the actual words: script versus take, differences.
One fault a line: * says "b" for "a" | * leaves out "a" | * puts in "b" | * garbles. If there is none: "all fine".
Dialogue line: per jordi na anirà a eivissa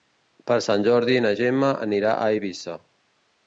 * puts in "sant"
* puts in "gemma"